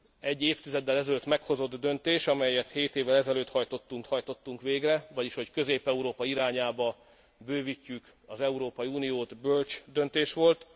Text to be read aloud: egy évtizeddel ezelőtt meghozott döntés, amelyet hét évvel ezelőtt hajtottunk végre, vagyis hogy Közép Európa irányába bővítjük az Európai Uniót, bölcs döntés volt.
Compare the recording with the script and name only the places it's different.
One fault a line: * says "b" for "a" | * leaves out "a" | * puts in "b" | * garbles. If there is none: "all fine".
* puts in "hajtottunk"